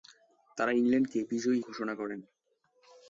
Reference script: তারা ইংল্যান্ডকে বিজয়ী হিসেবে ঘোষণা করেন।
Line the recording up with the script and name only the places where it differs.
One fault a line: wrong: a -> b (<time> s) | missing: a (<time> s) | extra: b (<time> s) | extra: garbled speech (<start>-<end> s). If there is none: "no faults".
missing: হিসেবে (1.6 s)